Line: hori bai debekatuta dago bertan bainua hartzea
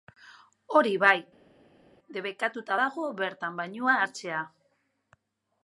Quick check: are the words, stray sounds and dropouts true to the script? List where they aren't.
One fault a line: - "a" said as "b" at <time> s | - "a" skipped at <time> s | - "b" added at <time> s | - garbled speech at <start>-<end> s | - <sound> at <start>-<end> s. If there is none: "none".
none